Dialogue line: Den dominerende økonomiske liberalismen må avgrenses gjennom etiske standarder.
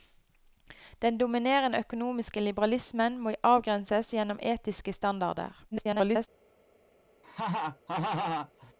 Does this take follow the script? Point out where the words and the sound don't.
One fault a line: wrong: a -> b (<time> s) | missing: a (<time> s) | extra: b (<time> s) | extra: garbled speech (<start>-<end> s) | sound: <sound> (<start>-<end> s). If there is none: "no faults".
extra: garbled speech (5.7-6.3 s)
sound: laugh (7.2-8.7 s)